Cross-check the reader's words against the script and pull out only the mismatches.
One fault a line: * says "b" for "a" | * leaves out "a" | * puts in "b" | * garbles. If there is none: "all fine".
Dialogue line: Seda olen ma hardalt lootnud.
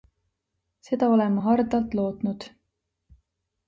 all fine